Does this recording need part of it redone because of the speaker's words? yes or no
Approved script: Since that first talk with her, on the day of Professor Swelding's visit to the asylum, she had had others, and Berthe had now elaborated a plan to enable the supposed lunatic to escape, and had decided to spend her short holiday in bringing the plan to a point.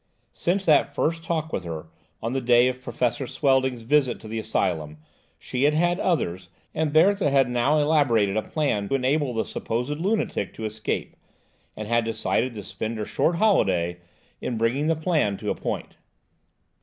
yes